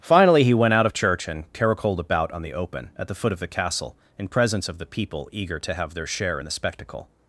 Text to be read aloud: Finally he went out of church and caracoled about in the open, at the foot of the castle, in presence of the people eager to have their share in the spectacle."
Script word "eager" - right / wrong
right